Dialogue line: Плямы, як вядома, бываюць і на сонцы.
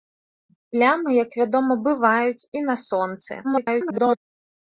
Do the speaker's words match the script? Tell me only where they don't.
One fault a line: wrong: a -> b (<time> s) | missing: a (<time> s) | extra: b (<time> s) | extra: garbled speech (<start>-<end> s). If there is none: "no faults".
extra: garbled speech (3.4-4.2 s)